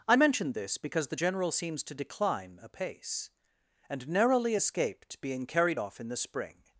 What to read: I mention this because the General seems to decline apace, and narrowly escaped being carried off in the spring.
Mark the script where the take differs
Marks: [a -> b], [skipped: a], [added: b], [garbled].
I mention this because the General seems to decline apace, and narrowly escaped being carried off in the spring.